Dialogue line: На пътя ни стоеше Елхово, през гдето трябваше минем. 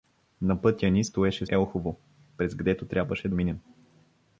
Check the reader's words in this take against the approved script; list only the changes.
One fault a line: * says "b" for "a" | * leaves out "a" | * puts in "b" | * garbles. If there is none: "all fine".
all fine